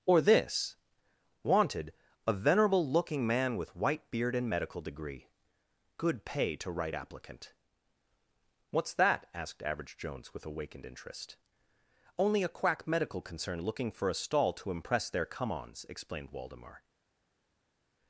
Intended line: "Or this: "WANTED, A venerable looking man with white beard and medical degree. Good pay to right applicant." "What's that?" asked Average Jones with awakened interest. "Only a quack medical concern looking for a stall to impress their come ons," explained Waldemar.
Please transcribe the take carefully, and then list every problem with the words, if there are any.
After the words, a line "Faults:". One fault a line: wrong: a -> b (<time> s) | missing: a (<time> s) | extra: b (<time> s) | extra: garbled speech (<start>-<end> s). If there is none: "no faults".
"Or this: "WANTED, A venerable looking man with white beard and medical degree. Good pay to right applicant." "What's that?" asked Average Jones with awakened interest. "Only a quack medical concern looking for a stall to impress their come ons," explained Waldemar.
Faults:
no faults